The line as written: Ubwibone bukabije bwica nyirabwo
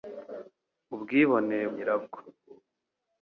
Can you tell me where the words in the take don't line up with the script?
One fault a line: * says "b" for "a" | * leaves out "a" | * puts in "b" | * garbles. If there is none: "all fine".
* leaves out "bukabije bwica"